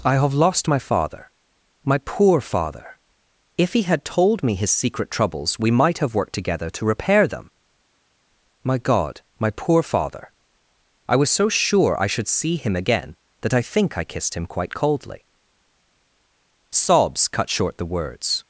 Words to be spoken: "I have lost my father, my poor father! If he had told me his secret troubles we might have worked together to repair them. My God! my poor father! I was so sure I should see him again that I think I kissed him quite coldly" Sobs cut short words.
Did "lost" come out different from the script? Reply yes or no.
no